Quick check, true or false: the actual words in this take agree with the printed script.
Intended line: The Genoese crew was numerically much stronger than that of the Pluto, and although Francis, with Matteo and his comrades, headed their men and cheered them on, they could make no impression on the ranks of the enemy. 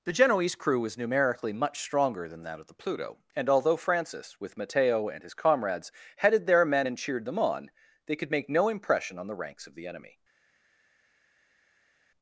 true